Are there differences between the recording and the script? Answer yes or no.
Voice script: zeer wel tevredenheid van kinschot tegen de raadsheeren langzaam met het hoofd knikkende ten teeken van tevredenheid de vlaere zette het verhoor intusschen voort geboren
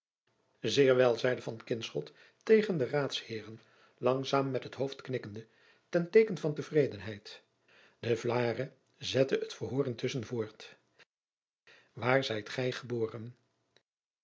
yes